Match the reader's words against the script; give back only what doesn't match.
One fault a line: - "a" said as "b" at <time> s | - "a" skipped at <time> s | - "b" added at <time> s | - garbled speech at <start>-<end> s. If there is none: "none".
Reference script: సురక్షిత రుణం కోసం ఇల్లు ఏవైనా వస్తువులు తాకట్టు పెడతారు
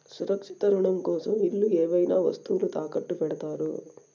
none